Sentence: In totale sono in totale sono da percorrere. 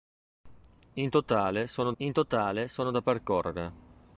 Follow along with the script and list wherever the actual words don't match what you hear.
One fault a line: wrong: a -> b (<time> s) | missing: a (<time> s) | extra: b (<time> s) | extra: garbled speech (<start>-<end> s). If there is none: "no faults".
no faults